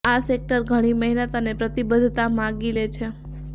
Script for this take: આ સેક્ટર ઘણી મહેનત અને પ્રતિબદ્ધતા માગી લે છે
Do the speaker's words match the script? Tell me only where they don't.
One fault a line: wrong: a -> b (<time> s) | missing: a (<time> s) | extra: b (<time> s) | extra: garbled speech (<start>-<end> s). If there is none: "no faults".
no faults